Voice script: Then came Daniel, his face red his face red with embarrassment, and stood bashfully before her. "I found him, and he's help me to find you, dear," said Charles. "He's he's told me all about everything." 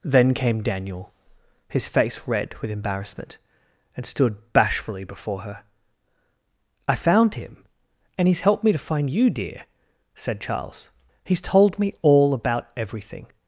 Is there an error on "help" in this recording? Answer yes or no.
yes